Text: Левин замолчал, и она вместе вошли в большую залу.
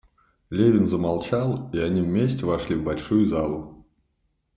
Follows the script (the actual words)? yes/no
no